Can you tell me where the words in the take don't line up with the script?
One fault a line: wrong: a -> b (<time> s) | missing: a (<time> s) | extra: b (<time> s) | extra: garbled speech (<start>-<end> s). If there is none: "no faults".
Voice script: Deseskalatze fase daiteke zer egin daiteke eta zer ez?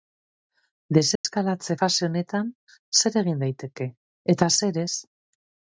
wrong: daiteke -> honetan (2.1 s)